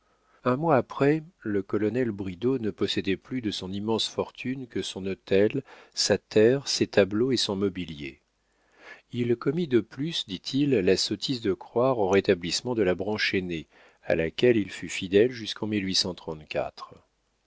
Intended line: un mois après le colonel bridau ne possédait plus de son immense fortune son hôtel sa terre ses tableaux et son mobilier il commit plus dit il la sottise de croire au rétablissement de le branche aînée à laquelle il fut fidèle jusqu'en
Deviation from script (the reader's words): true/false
true